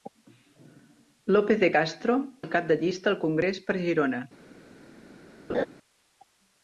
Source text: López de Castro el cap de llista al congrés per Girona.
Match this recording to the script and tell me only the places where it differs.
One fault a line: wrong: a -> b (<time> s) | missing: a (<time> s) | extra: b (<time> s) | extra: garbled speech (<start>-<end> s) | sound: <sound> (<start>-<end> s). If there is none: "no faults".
sound: laugh (5.5-5.7 s)